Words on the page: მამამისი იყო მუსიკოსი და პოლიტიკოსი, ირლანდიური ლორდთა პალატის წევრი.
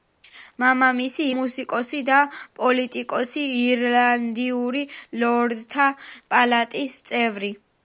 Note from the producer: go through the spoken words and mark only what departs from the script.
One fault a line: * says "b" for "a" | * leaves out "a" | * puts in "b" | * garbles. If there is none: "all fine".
* leaves out "იყო"